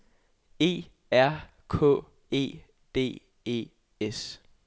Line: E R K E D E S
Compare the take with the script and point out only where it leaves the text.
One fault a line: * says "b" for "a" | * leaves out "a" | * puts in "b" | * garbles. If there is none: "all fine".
all fine